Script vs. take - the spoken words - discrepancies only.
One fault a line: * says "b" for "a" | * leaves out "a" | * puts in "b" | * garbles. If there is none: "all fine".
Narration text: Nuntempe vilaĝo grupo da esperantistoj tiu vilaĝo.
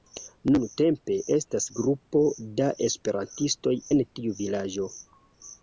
* says "estas" for "vilaĝo"
* puts in "en"